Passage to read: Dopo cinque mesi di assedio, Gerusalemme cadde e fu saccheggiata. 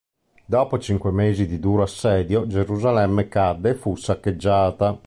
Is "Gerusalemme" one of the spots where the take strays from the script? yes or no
no